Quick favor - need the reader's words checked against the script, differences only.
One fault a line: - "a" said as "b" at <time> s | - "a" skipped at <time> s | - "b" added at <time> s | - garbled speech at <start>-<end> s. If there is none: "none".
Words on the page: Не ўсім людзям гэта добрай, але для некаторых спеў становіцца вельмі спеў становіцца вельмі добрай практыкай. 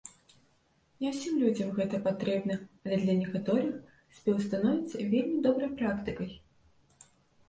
- "добрай" said as "патрэбна" at 2.1 s
- "спеў становіцца вельмі" skipped at 5.4 s